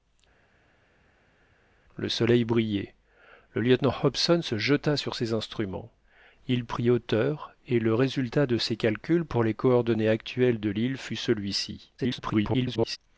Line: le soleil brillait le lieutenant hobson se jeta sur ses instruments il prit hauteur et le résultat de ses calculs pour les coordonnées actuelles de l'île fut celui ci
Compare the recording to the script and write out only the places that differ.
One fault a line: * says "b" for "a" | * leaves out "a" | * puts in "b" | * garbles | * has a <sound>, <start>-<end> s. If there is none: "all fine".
* garbles